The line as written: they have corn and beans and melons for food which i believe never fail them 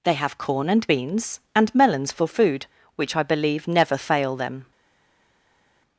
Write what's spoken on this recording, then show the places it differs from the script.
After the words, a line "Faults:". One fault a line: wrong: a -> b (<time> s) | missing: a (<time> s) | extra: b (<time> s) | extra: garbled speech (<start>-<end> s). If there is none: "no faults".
they have corn and beans and melons for food which i believe never fail them
Faults:
no faults